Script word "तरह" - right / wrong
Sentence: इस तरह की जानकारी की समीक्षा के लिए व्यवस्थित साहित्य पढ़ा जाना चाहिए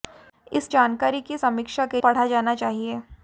wrong